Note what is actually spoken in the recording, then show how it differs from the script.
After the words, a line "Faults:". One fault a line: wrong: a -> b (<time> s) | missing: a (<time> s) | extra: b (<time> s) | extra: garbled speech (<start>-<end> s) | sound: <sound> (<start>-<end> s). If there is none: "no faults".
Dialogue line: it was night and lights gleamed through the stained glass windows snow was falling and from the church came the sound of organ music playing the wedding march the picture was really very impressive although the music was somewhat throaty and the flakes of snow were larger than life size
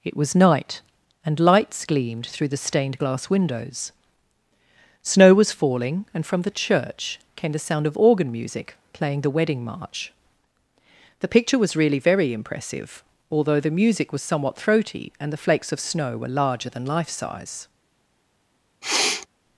it was night and lights gleamed through the stained glass windows snow was falling and from the church came the sound of organ music playing the wedding march the picture was really very impressive although the music was somewhat throaty and the flakes of snow were larger than life size
Faults:
sound: sniff (18.8-19.3 s)